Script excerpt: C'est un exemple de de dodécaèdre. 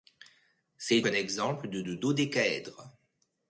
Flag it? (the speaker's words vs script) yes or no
no